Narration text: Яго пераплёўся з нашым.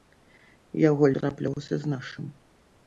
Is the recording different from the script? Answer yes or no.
no